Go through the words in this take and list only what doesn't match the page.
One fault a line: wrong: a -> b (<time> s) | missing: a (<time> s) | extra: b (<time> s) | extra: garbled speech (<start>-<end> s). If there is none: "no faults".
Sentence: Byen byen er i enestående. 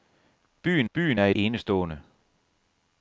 no faults